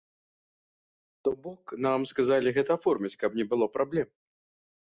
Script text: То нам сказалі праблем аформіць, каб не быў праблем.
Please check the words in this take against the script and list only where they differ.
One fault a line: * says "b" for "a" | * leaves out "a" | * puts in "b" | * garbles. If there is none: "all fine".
* puts in "бок"
* says "гэта" for "праблем"
* says "было" for "быў"